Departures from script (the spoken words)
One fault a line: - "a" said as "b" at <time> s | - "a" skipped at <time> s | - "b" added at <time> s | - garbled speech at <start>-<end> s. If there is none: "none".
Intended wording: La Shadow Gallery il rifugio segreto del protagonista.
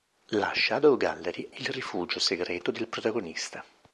none